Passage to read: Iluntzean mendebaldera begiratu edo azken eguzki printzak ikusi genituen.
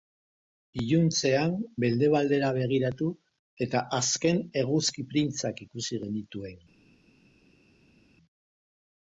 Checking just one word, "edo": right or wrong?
wrong